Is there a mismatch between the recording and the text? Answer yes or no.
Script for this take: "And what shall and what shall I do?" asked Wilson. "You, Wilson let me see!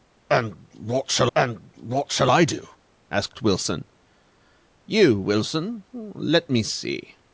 no